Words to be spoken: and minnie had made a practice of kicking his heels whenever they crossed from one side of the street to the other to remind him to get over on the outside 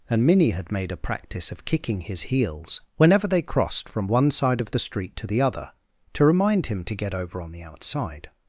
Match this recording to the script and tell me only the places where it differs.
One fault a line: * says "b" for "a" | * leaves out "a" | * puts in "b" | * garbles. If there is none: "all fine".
all fine